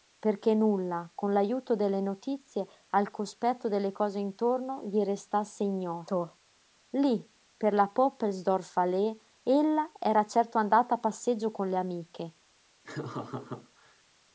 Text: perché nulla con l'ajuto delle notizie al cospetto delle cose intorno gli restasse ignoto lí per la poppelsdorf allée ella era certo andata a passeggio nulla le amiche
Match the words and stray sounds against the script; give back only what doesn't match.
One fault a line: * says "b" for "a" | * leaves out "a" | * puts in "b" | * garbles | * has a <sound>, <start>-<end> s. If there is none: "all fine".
* says "con" for "nulla"
* has a laugh, 12.8-14.0 s